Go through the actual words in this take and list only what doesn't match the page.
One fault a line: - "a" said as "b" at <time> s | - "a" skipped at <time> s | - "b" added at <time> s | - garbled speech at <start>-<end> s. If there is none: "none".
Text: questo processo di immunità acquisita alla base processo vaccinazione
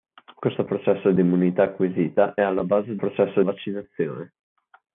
none